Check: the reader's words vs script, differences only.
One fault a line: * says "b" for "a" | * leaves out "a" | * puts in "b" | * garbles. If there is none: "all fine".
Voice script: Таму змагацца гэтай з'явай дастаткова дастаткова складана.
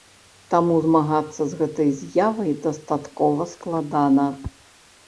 * puts in "з"
* leaves out "дастаткова"